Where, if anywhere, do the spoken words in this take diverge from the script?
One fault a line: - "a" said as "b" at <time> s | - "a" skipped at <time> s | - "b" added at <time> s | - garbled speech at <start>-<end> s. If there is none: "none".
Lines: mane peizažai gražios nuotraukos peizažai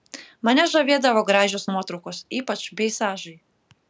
- "peizažai" said as "žavėdavo" at 0.7 s
- "ypač" added at 2.4 s